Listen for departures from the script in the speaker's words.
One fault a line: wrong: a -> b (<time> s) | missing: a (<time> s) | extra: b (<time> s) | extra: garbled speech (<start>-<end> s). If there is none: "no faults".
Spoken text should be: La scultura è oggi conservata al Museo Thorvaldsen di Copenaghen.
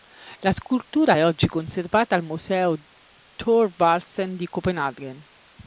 no faults